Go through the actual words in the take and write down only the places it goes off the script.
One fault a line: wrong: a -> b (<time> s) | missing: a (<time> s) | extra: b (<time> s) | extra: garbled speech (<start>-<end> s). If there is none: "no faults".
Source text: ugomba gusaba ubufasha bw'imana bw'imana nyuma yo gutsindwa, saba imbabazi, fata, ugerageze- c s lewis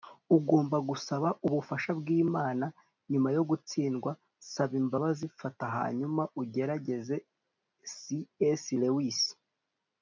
missing: bw'imana (2.6 s)
extra: hanyuma (5.8 s)